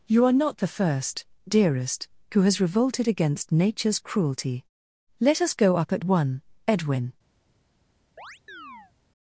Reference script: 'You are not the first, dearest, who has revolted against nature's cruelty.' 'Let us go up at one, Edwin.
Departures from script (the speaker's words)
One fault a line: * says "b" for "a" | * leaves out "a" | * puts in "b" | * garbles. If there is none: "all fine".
all fine